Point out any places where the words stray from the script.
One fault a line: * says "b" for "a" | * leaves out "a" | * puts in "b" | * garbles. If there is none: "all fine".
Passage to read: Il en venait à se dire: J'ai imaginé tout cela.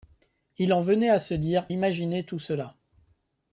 * leaves out "J'ai"